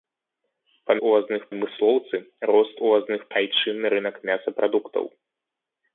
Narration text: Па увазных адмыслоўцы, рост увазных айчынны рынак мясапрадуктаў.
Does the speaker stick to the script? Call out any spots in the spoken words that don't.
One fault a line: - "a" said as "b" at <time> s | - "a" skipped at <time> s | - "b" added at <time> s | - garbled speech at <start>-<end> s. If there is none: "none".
none